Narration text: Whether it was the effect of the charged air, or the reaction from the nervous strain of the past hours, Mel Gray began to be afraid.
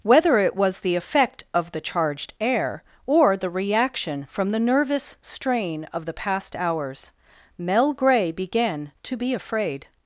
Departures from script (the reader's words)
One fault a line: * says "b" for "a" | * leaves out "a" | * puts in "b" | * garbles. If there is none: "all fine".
all fine